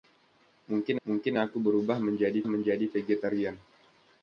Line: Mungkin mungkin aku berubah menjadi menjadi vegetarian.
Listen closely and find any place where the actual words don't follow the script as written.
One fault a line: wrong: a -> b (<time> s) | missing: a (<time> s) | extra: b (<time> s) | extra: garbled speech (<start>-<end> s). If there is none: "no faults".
no faults